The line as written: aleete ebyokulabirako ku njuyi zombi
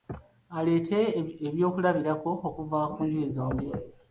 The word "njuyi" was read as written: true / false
true